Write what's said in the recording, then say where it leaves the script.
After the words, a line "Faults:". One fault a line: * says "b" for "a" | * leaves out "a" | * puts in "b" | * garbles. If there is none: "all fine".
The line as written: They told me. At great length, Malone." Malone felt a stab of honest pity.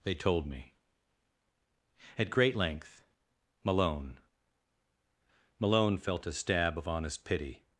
They told me. At great length, Malone." Malone felt a stab of honest pity.
Faults:
all fine